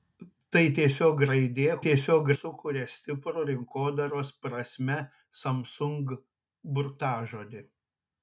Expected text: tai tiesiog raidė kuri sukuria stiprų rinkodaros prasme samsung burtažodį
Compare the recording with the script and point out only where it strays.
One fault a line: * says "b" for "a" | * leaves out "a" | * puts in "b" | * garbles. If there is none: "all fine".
* says "tiesiog" for "kuri"